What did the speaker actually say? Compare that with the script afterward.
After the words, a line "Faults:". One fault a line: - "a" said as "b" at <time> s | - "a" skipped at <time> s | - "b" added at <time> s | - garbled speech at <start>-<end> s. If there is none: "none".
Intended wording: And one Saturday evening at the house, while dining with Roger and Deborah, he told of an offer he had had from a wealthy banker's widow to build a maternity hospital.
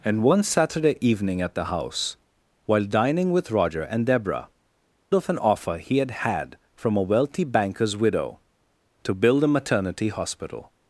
And one Saturday evening at the house, while dining with Roger and Deborah, of an offer he had had from a wealthy banker's widow to build a maternity hospital.
Faults:
- "he told" skipped at 4.5 s